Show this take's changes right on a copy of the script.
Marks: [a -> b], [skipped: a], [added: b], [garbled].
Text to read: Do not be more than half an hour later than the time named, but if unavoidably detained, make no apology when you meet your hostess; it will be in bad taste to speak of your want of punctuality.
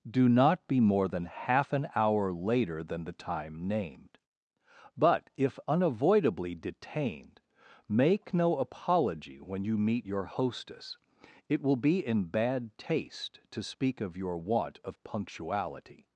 Do not be more than half an hour later than the time named, but if unavoidably detained, make no apology when you meet your hostess; it will be in bad taste to speak of your want of punctuality.